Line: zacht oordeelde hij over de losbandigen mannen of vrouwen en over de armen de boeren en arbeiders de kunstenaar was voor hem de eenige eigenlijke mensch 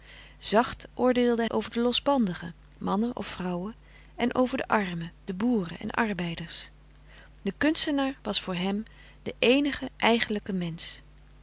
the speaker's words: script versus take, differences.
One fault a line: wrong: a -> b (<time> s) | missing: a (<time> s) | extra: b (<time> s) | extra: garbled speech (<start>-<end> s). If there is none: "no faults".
missing: hij (1.4 s)